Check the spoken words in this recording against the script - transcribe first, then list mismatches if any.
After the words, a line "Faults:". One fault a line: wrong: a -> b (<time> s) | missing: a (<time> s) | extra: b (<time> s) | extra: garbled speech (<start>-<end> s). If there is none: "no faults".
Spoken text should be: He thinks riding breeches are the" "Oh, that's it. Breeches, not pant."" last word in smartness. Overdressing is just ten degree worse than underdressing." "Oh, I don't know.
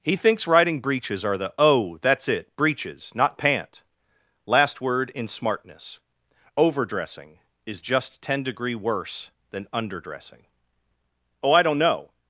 He thinks riding breeches are the" "Oh, that's it. Breeches, not pant."" last word in smartness. Overdressing is just ten degree worse than underdressing." "Oh, I don't know.
Faults:
no faults